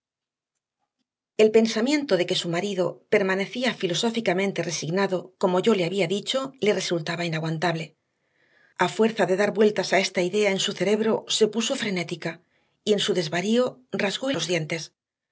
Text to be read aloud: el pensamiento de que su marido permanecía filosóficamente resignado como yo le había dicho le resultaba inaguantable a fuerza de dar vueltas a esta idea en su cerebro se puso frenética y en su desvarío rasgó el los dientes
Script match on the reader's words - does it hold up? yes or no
yes